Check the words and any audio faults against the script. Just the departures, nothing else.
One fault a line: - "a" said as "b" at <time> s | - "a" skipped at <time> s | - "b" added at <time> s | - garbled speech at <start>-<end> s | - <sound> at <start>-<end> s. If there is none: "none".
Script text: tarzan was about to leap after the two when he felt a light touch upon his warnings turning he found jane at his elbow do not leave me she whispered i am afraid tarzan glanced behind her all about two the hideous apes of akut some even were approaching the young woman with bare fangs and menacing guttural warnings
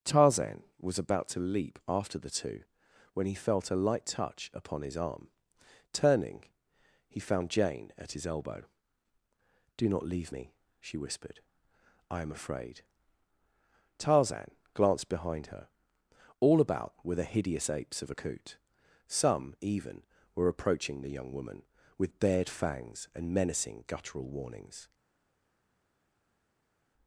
- "warnings" said as "arm" at 5.0 s
- "two" said as "were" at 17.0 s
- "bare" said as "bared" at 22.2 s